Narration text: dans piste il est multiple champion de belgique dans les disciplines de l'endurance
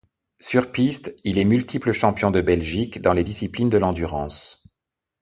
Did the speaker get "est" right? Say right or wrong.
right